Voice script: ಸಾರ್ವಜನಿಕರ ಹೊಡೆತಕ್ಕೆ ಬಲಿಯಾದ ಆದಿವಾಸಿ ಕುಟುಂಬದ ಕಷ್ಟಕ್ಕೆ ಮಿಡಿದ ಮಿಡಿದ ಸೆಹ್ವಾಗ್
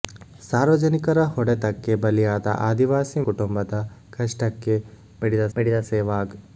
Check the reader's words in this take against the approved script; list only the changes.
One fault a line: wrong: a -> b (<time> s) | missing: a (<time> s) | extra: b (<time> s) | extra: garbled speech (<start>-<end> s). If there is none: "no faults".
no faults